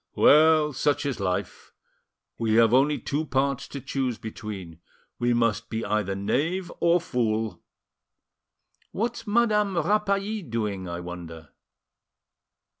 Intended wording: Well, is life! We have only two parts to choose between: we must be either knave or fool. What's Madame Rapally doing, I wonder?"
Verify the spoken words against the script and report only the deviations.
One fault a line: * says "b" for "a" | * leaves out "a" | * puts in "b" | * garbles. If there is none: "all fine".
* puts in "such"